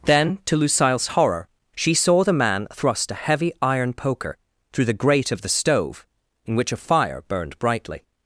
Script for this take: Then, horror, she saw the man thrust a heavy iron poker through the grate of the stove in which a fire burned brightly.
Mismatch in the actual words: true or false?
true